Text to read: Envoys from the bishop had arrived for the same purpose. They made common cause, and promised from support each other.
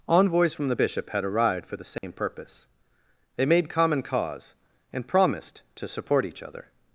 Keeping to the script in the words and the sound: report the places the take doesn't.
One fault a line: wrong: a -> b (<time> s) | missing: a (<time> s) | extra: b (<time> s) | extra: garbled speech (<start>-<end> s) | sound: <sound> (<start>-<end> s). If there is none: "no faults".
sound: dropout (2.0-2.0 s)
wrong: from -> to (5.8 s)